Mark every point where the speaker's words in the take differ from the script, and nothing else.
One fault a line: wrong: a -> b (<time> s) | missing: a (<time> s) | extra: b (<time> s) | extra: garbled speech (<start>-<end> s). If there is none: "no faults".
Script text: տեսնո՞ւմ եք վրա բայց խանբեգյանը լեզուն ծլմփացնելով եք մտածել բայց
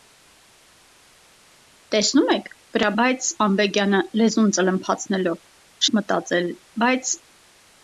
no faults